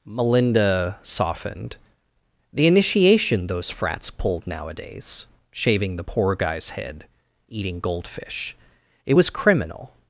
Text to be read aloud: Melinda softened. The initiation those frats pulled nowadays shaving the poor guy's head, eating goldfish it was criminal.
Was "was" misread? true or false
false